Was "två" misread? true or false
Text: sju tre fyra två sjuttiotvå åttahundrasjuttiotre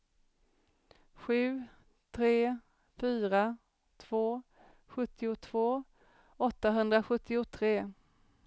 false